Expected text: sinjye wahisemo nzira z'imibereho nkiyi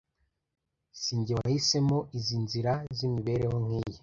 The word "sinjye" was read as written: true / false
true